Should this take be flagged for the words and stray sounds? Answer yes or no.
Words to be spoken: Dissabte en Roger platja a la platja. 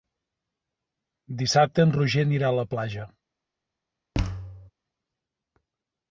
yes